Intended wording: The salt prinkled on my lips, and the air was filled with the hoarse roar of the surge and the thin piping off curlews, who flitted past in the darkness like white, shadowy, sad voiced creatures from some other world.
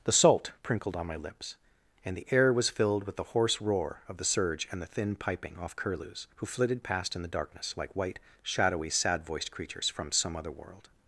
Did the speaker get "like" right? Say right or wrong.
right